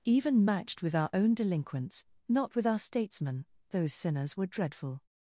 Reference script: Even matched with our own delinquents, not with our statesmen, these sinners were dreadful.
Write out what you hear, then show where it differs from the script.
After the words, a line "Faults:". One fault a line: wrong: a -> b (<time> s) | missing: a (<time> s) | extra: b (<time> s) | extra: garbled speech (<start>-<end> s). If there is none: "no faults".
Even matched with our own delinquents, not with our statesmen, those sinners were dreadful.
Faults:
wrong: these -> those (3.7 s)